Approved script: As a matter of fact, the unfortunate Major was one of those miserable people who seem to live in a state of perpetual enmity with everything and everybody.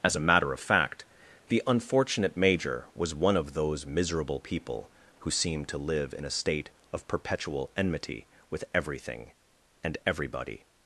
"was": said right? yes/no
yes